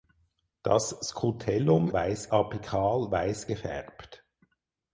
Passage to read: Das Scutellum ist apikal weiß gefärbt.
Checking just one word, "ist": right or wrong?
wrong